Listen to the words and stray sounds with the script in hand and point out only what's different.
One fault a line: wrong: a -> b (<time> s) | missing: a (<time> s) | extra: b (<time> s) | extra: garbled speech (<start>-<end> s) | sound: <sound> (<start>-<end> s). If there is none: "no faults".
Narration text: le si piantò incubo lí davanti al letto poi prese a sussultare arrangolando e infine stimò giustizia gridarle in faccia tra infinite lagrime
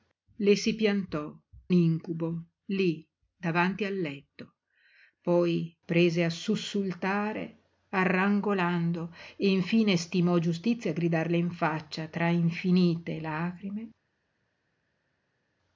no faults